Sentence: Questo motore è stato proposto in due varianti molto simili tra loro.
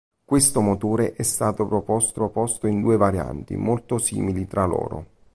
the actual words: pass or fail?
fail